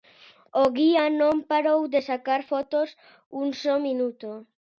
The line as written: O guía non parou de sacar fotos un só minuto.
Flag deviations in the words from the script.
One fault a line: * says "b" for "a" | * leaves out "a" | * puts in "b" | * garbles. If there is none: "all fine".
all fine